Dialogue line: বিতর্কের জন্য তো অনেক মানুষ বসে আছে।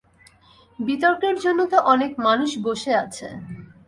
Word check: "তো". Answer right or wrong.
right